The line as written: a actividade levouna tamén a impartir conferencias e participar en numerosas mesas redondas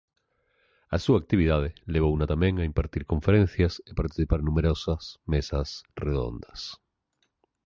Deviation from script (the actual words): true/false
true